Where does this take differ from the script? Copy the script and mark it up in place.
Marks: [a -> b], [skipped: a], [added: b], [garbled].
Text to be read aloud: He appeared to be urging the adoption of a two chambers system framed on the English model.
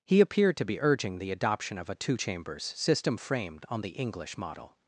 He appeared to be urging the adoption of a two chambers system framed on the English model.